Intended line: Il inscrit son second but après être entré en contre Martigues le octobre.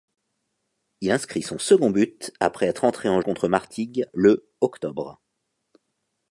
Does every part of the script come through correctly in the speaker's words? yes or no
yes